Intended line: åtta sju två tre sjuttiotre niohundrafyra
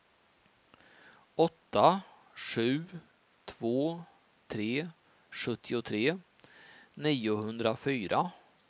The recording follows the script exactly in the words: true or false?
true